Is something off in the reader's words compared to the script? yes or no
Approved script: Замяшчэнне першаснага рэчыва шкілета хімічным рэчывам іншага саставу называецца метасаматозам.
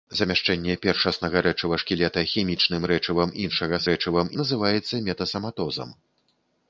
yes